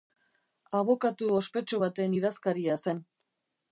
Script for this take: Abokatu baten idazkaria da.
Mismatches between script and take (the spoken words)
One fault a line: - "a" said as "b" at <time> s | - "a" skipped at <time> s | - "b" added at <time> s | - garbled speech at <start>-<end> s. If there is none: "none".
- "ospetsu" added at 1.4 s
- "da" said as "zen" at 2.9 s